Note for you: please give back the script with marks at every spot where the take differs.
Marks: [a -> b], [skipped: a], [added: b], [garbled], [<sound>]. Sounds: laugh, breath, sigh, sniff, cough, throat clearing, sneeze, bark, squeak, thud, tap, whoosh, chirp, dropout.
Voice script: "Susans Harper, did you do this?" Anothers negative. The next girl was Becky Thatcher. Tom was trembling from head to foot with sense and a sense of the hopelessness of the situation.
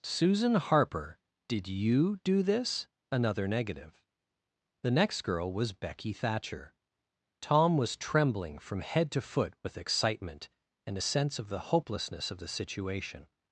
["Susans -> Susan] Harper, did you do this?" [Anothers -> Another] negative. The next girl was Becky Thatcher. Tom was trembling from head to foot with [sense -> excitement] and a sense of the hopelessness of the situation.